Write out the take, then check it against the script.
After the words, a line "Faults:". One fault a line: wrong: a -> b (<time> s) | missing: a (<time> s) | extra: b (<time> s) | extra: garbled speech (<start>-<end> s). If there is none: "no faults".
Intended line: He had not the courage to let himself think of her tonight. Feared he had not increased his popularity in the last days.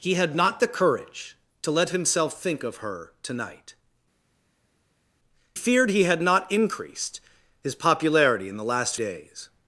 He had not the courage to let himself think of her tonight. Feared he had not increased his popularity in the last days.
Faults:
no faults